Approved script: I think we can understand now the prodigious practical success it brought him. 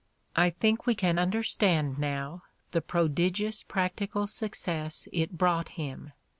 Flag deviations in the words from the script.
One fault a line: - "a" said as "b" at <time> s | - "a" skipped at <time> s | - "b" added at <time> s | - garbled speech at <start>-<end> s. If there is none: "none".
none